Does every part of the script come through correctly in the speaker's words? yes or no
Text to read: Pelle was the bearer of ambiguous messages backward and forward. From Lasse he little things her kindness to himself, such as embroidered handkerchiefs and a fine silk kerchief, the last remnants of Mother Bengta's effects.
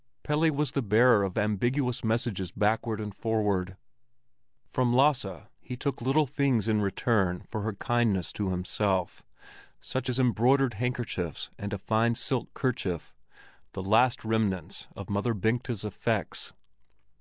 no